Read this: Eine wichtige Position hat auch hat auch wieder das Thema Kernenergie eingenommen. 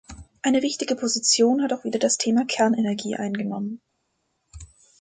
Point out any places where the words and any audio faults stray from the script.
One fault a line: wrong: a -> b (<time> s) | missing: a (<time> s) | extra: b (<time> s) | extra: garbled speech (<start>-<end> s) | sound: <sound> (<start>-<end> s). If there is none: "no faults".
missing: hat auch (1.8 s)